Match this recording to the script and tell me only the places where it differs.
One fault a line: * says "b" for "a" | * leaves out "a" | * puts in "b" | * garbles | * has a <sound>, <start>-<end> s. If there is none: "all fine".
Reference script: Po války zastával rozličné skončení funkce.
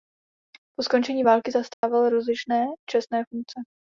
* puts in "skončení"
* has a dropout, 1.7-1.8 s
* says "čestné" for "skončení"